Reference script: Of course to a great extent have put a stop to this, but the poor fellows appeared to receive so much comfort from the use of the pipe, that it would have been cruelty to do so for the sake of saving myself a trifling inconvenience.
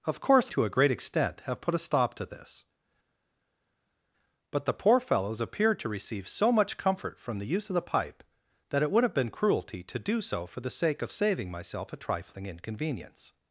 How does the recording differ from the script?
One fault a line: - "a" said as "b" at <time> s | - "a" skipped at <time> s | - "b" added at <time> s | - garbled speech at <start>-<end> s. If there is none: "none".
none